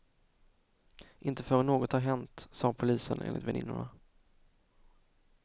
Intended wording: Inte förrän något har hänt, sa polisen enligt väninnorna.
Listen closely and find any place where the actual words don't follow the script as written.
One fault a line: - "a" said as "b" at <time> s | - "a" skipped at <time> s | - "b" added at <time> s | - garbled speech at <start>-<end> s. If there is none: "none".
none